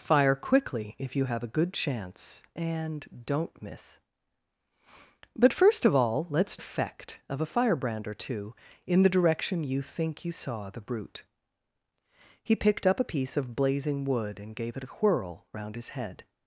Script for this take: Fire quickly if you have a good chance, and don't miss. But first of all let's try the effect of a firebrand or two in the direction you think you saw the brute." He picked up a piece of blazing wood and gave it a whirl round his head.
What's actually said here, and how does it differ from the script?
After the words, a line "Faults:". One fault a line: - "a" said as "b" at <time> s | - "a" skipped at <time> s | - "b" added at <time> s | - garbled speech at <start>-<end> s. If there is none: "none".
Fire quickly if you have a good chance, and don't miss. But first of all let's effect of a firebrand or two in the direction you think you saw the brute." He picked up a piece of blazing wood and gave it a whirl round his head.
Faults:
- "try the" skipped at 6.6 s